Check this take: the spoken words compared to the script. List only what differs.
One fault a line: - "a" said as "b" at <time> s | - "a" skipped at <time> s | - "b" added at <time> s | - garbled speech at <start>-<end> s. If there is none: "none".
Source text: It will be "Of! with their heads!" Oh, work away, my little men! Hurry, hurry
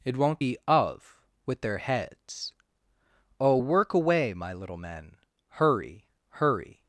- "will" said as "won't" at 0.2 s